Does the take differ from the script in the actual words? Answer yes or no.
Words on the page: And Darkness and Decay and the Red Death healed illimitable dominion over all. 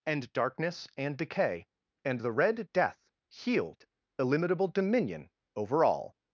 no